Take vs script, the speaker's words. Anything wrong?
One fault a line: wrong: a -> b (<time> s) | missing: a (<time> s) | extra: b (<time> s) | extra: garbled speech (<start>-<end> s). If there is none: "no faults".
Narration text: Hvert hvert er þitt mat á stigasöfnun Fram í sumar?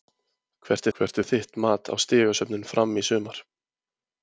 no faults